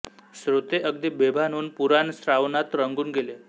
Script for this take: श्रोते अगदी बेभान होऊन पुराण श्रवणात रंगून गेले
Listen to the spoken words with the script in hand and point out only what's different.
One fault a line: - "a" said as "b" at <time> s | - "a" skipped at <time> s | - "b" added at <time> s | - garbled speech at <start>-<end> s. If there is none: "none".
none